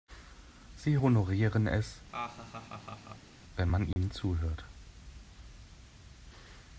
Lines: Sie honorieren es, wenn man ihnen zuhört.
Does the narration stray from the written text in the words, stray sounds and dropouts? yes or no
yes